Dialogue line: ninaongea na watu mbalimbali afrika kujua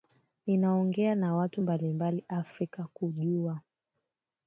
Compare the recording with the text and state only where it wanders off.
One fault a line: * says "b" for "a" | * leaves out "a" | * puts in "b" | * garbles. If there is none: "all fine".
all fine